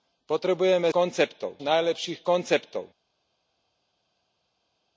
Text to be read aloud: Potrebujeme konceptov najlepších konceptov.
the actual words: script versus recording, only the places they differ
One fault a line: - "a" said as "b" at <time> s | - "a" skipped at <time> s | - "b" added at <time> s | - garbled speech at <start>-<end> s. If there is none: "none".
none